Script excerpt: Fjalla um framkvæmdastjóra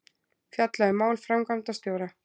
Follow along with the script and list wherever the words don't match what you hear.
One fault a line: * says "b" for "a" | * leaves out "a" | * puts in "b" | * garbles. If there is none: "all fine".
* puts in "mál"